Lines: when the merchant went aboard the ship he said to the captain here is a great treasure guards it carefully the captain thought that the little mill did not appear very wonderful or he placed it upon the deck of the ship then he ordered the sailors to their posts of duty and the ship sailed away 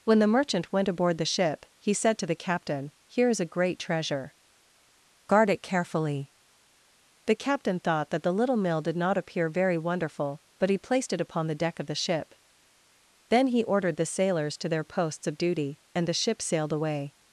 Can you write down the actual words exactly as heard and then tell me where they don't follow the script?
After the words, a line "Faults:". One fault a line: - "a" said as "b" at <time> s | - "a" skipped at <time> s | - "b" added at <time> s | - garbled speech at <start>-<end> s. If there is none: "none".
when the merchant went aboard the ship he said to the captain here is a great treasure guard it carefully the captain thought that the little mill did not appear very wonderful but he placed it upon the deck of the ship then he ordered the sailors to their posts of duty and the ship sailed away
Faults:
- "guards" said as "guard" at 5.3 s
- "or" said as "but" at 10.6 s